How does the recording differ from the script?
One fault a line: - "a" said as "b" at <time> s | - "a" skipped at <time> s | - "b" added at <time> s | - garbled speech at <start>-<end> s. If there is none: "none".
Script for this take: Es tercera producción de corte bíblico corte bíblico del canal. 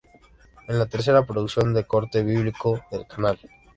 - "la" added at 0.8 s
- "corte bíblico" skipped at 2.8 s